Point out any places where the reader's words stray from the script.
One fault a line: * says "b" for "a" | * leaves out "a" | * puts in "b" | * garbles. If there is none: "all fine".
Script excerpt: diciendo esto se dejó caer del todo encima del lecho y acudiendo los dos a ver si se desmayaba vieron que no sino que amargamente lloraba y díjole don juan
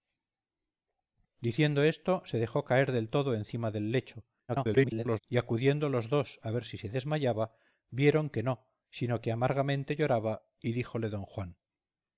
* garbles